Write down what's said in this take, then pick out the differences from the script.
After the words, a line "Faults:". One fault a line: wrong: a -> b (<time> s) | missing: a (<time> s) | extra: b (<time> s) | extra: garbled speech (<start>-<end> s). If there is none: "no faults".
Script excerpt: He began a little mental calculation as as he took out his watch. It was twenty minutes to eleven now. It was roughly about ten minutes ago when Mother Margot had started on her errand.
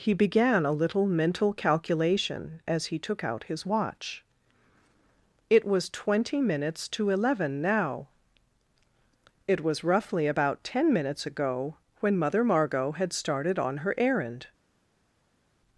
He began a little mental calculation as he took out his watch. It was twenty minutes to eleven now. It was roughly about ten minutes ago when Mother Margot had started on her errand.
Faults:
missing: as (2.9 s)